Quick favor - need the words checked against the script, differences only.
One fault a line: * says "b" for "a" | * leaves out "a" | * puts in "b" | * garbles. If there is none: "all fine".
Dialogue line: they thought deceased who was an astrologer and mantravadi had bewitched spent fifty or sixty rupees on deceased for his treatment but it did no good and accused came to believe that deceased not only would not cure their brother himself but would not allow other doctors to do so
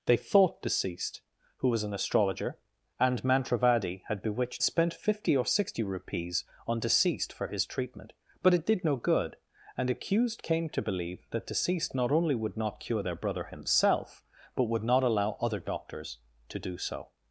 all fine